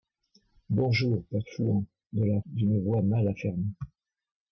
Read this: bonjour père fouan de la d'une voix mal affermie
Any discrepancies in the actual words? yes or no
no